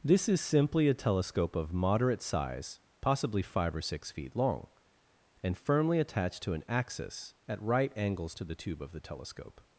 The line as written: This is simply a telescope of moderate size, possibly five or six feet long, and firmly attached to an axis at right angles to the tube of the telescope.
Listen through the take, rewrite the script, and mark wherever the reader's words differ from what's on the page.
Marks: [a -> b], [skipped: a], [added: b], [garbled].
This is simply a telescope of moderate size, possibly five or six feet long, and firmly attached to an axis at right angles to the tube of the telescope.